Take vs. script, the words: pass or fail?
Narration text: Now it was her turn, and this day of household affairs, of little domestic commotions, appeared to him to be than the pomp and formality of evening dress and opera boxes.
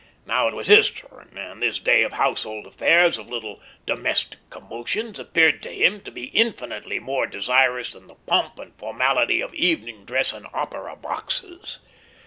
fail